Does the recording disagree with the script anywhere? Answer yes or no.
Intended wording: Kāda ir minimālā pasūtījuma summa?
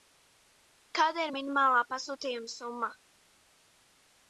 no